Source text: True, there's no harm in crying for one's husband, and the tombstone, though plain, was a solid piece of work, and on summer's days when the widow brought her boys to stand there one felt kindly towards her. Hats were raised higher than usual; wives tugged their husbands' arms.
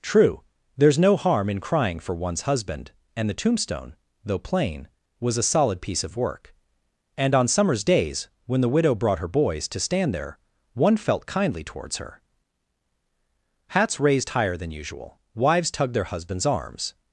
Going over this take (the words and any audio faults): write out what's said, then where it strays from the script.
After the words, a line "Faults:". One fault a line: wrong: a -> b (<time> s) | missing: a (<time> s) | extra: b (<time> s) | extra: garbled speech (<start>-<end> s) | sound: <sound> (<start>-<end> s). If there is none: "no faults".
True, there's no harm in crying for one's husband, and the tombstone, though plain, was a solid piece of work, and on summer's days when the widow brought her boys to stand there one felt kindly towards her. Hats raised higher than usual; wives tugged their husbands' arms.
Faults:
missing: were (14.0 s)